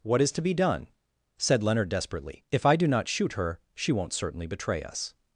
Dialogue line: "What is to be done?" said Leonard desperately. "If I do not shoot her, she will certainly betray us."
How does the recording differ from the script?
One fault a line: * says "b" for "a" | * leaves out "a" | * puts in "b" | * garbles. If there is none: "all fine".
* says "won't" for "will"